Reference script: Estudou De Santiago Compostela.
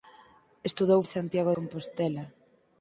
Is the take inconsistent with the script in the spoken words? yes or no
no